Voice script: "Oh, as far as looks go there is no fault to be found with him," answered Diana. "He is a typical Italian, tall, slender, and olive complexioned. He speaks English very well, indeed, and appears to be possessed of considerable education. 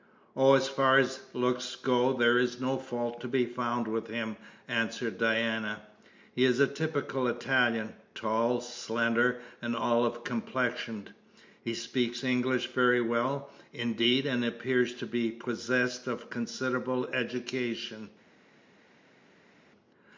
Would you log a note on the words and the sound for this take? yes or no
no